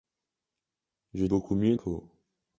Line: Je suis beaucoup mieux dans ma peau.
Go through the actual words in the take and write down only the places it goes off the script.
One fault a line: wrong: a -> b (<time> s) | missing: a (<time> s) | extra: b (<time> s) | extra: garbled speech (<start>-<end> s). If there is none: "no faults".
missing: suis (1.2 s)
missing: dans ma (1.8 s)